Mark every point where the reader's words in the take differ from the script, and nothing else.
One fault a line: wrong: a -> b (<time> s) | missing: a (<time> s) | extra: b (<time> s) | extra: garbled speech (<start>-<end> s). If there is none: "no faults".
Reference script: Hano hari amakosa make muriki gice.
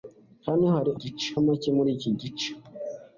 wrong: amakosa -> gice (1.0 s)